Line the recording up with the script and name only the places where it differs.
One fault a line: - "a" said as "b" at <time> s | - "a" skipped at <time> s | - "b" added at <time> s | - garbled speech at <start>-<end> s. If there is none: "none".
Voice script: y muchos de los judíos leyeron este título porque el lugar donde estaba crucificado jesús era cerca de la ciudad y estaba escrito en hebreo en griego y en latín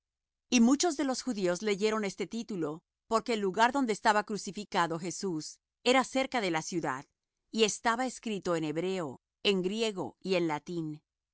none